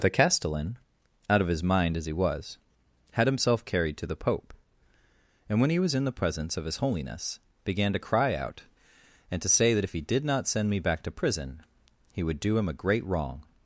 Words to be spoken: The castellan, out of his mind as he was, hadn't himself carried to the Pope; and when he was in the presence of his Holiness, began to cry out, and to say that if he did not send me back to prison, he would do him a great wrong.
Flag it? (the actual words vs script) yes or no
yes